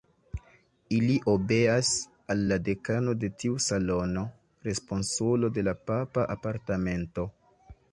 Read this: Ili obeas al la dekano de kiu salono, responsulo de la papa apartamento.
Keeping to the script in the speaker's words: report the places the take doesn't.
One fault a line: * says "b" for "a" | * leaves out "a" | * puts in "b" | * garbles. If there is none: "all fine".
* says "tiu" for "kiu"